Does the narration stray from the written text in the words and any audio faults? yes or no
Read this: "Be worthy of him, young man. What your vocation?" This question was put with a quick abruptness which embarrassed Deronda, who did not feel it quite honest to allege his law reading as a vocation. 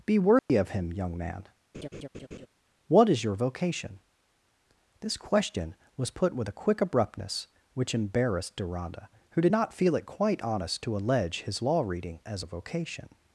yes